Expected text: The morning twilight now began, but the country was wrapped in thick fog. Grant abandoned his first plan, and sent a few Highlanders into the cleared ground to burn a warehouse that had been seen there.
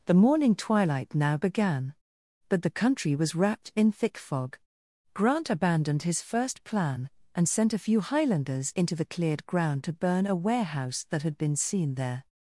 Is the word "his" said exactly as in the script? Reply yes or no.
yes